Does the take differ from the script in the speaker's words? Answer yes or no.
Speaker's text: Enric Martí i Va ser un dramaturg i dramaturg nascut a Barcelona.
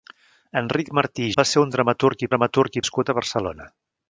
no